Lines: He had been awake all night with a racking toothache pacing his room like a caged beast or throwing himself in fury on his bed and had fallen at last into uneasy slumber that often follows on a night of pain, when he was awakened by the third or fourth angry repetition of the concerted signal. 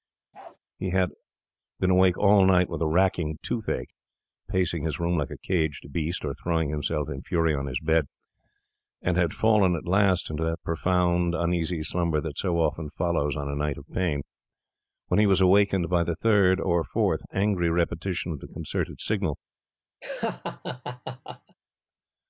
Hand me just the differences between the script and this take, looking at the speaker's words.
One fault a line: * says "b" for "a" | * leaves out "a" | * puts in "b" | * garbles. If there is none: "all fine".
* puts in "that profound"
* puts in "so"